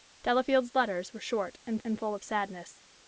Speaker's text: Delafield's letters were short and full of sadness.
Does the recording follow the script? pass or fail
fail